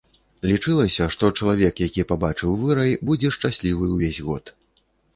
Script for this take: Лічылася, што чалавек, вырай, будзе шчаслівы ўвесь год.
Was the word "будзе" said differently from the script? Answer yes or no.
no